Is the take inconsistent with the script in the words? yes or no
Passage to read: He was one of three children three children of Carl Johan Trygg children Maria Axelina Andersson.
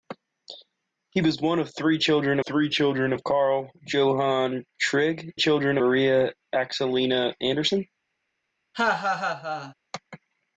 no